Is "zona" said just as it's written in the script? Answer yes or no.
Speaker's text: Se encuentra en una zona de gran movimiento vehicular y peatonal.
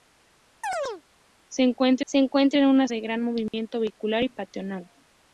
no